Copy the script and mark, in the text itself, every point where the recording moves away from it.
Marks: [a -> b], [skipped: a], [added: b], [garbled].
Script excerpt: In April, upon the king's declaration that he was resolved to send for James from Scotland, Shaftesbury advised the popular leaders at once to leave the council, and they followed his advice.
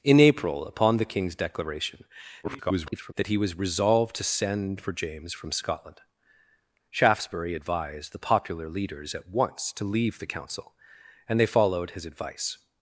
In April, upon the king's declaration [garbled] that he was resolved to send for James from Scotland, Shaftesbury advised the popular leaders at once to leave the council, and they followed his advice.